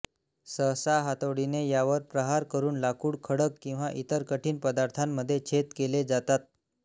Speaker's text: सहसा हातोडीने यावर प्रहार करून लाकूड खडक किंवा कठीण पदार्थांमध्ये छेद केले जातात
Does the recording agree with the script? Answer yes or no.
no